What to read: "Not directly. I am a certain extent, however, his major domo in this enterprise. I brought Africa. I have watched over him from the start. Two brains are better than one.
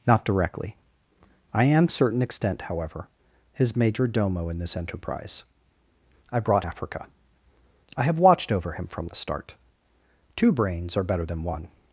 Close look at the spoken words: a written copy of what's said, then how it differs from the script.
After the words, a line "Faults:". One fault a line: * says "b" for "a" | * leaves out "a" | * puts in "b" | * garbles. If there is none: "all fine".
"Not directly. I am a certain extent, however, his major domo in this enterprise. I brought Africa. I have watched over him from the start. Two brains are better than one.
Faults:
all fine